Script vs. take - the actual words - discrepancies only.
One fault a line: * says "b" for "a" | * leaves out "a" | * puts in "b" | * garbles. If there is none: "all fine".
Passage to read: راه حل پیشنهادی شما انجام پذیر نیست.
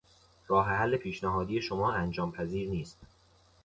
all fine